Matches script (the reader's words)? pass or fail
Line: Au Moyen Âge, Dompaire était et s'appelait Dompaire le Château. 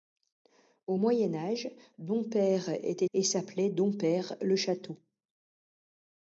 pass